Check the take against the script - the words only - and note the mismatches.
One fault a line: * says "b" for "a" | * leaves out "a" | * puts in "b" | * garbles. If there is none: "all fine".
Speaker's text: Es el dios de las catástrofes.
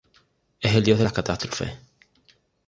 all fine